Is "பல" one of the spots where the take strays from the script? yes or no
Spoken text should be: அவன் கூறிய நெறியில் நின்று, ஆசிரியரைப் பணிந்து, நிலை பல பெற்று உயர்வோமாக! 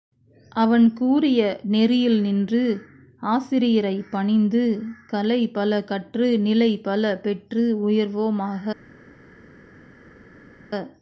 no